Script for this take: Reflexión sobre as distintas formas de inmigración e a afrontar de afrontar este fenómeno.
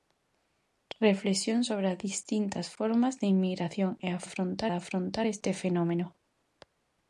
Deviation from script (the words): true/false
false